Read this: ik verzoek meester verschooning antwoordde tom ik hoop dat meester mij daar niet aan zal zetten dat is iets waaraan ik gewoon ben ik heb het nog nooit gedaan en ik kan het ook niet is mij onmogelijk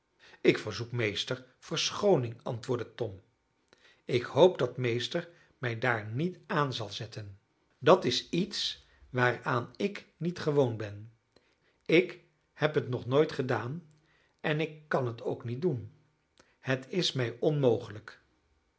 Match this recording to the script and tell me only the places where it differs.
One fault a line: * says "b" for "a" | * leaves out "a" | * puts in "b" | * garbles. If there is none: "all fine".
* puts in "niet"
* puts in "doen het"